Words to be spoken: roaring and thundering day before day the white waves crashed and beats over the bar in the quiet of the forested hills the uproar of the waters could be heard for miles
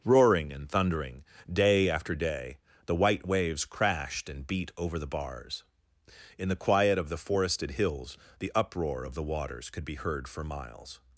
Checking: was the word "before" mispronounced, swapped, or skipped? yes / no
yes